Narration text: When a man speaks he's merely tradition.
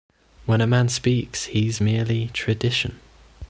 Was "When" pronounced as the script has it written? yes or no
yes